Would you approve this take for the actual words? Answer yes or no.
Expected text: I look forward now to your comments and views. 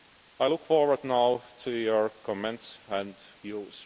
yes